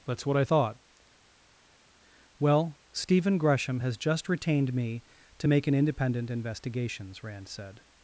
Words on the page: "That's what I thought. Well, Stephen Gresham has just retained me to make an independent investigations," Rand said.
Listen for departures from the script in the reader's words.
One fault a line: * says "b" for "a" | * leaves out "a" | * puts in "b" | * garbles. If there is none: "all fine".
all fine